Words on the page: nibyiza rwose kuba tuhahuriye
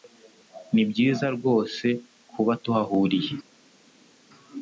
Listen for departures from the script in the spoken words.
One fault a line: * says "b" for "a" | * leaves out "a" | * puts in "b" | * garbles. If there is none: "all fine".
all fine